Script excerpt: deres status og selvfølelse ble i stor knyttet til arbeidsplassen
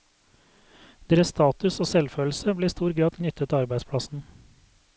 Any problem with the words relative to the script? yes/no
yes